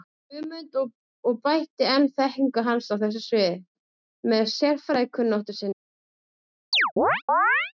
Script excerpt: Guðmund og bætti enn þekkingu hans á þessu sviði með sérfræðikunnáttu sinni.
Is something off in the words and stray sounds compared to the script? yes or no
yes